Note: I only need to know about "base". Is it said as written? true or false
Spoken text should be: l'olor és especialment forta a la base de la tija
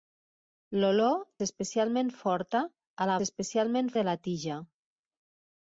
false